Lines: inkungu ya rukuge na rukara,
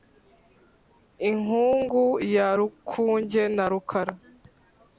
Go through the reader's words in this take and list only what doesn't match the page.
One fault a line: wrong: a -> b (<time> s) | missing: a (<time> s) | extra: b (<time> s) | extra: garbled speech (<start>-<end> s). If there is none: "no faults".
no faults